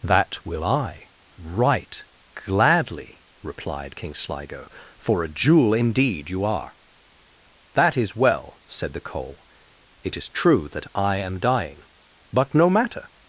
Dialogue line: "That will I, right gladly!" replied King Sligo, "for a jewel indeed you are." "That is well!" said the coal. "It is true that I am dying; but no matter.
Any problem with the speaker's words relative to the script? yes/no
no